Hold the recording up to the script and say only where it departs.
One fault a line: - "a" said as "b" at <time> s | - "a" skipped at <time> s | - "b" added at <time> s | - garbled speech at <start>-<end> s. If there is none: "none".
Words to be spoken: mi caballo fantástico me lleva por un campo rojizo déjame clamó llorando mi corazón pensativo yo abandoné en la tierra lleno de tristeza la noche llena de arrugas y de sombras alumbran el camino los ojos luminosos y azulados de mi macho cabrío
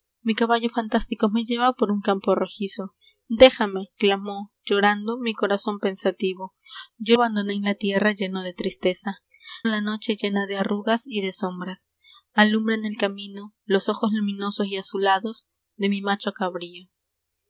none